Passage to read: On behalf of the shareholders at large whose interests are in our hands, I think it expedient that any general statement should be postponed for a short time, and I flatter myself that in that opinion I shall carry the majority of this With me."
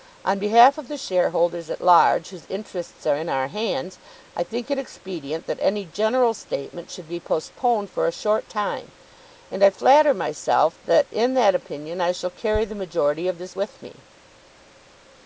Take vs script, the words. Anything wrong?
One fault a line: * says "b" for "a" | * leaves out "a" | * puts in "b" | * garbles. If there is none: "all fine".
all fine